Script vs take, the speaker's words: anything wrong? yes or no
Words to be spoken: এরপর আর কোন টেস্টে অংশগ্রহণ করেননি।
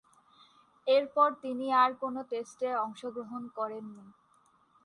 yes